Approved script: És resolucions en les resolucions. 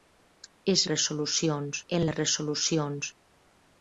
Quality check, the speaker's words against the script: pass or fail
pass